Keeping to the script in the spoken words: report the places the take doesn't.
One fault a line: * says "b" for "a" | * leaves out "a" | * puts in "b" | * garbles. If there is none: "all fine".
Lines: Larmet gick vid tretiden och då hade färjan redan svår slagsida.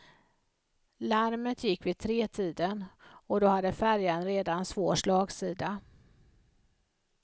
all fine